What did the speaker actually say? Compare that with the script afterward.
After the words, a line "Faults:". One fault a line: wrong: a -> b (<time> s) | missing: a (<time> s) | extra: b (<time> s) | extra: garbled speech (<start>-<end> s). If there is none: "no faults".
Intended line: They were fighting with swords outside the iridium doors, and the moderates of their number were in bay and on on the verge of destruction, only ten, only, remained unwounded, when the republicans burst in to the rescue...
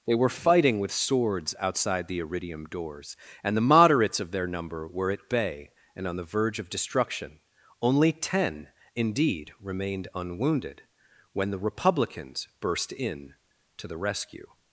They were fighting with swords outside the iridium doors, and the moderates of their number were at bay and on the verge of destruction, only ten, indeed, remained unwounded, when the republicans burst in to the rescue...
Faults:
wrong: in -> at (5.1 s)
missing: on (6.2 s)
wrong: only -> indeed (8.9 s)